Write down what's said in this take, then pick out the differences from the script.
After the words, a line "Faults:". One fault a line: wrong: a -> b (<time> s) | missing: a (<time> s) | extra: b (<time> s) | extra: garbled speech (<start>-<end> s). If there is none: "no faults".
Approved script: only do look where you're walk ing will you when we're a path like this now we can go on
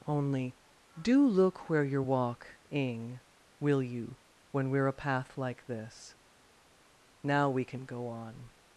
only do look where you're walk ing will you when we're a path like this now we can go on
Faults:
no faults